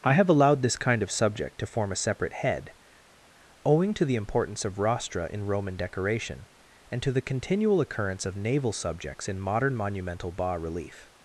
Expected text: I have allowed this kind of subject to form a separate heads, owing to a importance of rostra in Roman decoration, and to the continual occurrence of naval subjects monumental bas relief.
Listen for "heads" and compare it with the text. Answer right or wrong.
wrong